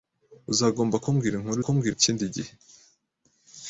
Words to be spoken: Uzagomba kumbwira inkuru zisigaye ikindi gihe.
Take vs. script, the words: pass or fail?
fail